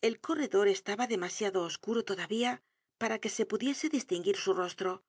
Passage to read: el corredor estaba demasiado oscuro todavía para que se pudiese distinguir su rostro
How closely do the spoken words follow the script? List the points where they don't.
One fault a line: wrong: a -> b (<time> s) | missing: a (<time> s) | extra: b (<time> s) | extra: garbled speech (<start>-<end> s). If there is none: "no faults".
no faults